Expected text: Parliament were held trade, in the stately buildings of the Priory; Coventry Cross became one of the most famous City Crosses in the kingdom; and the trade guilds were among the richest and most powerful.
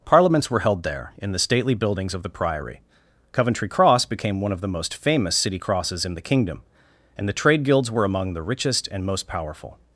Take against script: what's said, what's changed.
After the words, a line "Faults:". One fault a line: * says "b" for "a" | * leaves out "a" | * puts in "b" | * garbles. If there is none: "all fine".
Parliaments were held there, in the stately buildings of the Priory; Coventry Cross became one of the most famous City Crosses in the kingdom; and the trade guilds were among the richest and most powerful.
Faults:
* says "Parliaments" for "Parliament"
* says "there" for "trade"